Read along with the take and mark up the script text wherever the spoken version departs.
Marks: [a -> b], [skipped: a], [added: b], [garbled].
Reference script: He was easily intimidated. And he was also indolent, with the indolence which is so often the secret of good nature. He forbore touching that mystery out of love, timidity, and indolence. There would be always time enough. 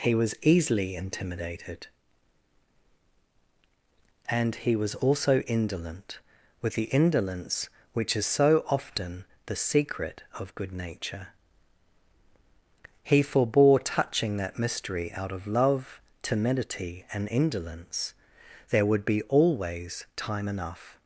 He was easily intimidated. And he was also indolent, with the indolence which is so often the secret of good nature. He forbore touching that mystery out of love, timidity, and indolence. There would be always time enough.